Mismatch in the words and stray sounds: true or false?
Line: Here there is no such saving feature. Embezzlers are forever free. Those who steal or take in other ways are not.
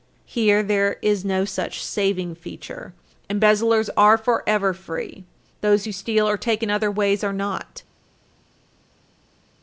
false